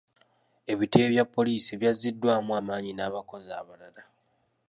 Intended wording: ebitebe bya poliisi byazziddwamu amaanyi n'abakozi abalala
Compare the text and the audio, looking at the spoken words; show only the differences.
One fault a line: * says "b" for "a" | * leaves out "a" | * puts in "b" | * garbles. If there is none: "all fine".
all fine